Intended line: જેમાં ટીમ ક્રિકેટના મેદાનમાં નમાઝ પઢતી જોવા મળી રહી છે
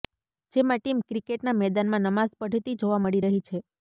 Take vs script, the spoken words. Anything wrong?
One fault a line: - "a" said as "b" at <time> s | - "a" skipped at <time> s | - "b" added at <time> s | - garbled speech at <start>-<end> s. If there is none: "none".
none